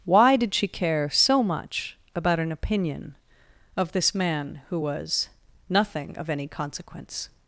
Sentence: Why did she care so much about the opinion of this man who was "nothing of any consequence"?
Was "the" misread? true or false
true